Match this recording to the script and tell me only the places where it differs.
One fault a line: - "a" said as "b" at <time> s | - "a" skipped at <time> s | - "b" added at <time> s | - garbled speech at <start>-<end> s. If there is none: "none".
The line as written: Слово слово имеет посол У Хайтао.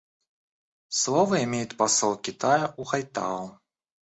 - "слово" skipped at 1.4 s
- "Китая" added at 2.2 s